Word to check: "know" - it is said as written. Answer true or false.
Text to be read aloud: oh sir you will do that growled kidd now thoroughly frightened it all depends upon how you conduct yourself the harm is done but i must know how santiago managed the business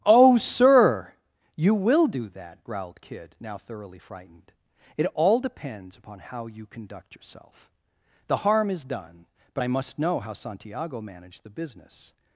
true